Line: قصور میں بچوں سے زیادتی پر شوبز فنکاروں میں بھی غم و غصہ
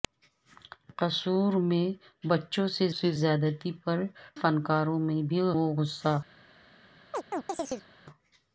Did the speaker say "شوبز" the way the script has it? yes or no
no